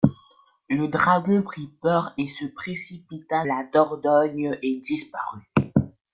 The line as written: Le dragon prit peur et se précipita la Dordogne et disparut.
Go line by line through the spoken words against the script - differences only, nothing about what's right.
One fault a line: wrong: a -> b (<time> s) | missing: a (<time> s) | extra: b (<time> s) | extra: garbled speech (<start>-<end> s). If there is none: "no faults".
no faults